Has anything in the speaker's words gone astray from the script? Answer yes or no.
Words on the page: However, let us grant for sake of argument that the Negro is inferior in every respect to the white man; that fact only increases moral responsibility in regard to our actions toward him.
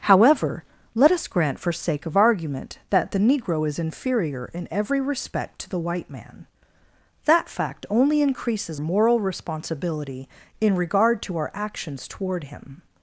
no